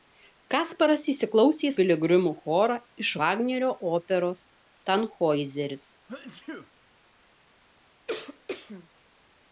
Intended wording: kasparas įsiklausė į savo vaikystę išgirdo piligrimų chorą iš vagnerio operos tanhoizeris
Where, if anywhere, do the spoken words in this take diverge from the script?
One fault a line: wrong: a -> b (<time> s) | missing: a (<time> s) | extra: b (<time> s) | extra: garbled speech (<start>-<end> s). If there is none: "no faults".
missing: savo vaikystę išgirdo (1.7 s)